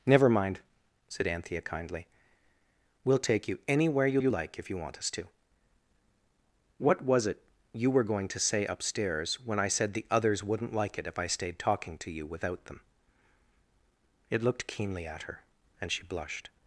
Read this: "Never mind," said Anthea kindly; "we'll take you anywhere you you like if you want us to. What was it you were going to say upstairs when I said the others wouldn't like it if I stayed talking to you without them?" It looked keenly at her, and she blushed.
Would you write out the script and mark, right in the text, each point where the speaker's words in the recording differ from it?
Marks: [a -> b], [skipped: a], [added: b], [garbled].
"Never mind," said Anthea kindly; "we'll take you anywhere you you like if you want us to. What was it you were going to say upstairs when I said the others wouldn't like it if I stayed talking to you without them?" It looked keenly at her, and she blushed.